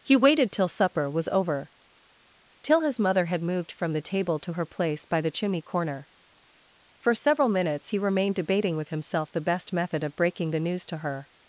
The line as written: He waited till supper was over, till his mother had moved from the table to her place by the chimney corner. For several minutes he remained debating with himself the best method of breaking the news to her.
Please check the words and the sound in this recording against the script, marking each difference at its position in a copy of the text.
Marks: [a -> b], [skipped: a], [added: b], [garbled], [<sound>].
He waited till supper was over, till his mother had moved from the table to her place by the chimney corner. For several minutes he remained debating with himself the best method of breaking the news to her.